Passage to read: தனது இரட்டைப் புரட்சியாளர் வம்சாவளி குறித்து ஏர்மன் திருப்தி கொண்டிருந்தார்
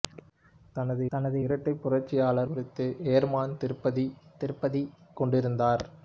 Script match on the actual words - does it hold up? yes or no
no